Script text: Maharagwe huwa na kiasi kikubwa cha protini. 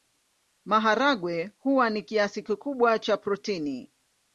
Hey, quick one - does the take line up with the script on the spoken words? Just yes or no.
yes